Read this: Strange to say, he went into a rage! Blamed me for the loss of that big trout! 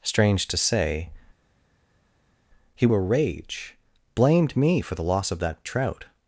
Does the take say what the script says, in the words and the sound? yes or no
no